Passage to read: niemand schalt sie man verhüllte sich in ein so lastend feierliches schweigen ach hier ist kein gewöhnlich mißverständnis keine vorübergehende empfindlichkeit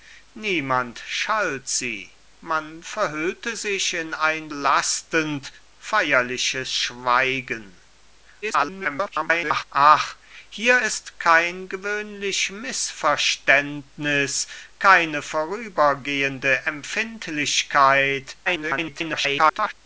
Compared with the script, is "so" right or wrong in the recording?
wrong